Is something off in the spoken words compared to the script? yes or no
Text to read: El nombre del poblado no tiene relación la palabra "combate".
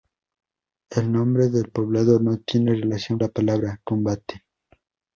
no